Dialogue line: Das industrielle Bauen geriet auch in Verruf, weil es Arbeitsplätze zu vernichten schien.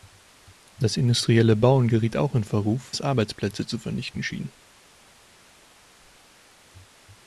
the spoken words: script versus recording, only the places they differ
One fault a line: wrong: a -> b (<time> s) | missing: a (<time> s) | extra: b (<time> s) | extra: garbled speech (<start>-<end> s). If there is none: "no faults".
missing: weil (2.9 s)